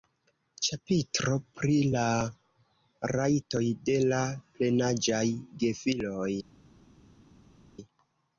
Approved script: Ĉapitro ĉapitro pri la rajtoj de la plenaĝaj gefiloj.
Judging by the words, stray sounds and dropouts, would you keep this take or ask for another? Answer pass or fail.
fail